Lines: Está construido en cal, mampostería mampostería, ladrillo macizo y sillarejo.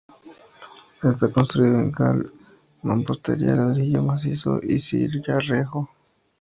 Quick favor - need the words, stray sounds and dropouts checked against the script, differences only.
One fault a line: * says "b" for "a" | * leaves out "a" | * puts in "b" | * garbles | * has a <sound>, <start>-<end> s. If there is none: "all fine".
* leaves out "mampostería"